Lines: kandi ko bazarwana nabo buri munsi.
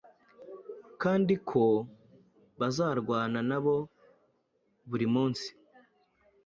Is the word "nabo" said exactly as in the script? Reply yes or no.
yes